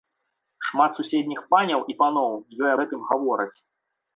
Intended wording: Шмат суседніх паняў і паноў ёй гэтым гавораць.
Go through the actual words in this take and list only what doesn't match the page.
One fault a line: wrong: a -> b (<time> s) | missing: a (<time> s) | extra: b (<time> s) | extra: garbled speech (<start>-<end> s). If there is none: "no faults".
no faults